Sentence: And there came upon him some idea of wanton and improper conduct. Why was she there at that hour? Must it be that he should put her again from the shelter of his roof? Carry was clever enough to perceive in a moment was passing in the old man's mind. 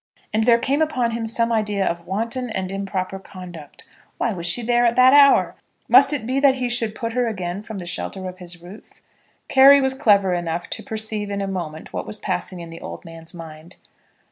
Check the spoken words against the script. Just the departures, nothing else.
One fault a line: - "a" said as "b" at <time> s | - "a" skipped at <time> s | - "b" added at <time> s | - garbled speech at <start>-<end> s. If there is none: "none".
- "what" added at 11.9 s